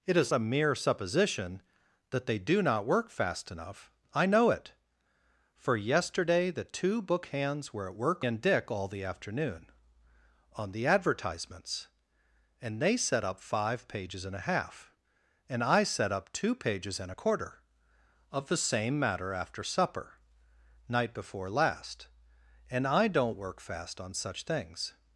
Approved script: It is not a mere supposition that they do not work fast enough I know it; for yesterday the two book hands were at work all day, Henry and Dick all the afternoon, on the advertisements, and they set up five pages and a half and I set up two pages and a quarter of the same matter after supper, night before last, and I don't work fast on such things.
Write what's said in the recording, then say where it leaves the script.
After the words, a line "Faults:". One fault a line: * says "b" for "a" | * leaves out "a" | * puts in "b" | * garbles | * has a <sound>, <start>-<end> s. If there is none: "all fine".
It is a mere supposition that they do not work fast enough I know it; for yesterday the two book hands were at work and Dick all the afternoon, on the advertisements, and they set up five pages and a half and I set up two pages and a quarter of the same matter after supper, night before last, and I don't work fast on such things.
Faults:
* leaves out "not"
* leaves out "all day Henry"